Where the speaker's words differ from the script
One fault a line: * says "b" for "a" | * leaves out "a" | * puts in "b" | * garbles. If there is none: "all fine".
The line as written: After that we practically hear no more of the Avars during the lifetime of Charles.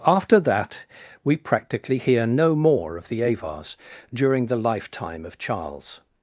all fine